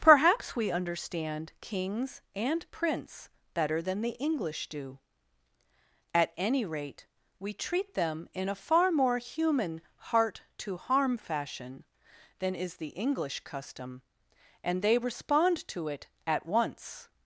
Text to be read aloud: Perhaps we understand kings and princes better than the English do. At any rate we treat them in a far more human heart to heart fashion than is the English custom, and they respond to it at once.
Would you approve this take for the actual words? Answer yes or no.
no